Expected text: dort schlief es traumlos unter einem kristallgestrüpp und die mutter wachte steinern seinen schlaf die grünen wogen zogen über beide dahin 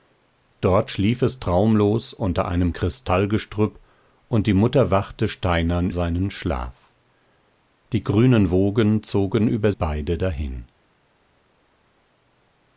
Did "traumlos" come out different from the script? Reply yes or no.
no